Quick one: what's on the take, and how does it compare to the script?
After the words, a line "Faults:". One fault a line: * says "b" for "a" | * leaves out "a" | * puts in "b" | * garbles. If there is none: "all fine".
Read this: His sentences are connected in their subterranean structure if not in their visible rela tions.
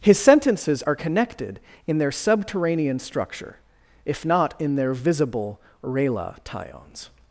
His sentences are connected in their subterranean structure if not in their visible rela tions.
Faults:
all fine